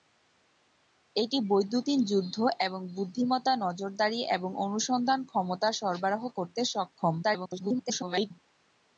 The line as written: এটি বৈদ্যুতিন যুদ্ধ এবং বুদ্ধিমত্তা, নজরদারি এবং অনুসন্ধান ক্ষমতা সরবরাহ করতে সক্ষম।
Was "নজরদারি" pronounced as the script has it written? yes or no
yes